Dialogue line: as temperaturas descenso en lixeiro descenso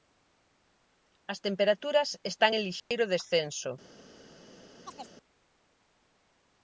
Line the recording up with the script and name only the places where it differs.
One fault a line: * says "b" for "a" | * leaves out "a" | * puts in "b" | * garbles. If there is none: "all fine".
* says "están" for "descenso"